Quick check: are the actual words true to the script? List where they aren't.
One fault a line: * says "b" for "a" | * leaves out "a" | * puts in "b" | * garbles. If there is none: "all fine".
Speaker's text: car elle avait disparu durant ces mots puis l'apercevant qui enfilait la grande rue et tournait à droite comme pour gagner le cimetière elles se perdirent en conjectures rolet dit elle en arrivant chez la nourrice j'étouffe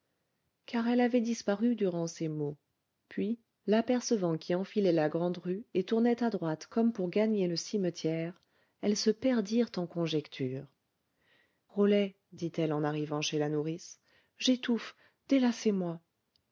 all fine